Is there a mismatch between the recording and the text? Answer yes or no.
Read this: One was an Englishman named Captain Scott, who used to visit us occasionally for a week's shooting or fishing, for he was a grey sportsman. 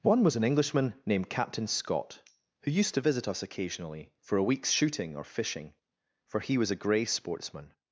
no